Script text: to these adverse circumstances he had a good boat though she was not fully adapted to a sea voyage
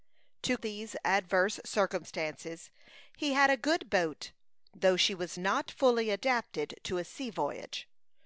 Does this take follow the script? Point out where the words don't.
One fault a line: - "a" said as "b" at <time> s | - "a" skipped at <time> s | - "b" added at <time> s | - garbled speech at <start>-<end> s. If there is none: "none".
none